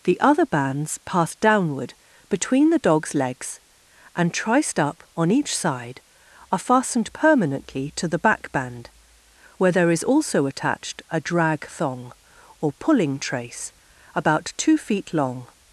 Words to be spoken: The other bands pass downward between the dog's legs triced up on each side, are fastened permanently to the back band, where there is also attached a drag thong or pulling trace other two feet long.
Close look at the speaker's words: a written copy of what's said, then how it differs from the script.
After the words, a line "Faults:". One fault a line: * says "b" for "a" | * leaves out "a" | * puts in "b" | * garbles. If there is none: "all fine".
The other bands pass downward between the dog's legs and, triced up on each side, are fastened permanently to the back band, where there is also attached a drag thong or pulling trace about two feet long.
Faults:
* puts in "and"
* says "about" for "other"